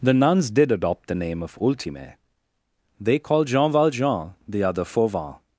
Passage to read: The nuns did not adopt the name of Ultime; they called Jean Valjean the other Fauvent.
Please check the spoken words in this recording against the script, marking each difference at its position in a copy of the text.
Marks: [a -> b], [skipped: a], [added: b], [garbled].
The nuns did [skipped: not] adopt the name of Ultime; they called Jean Valjean the other Fauvent.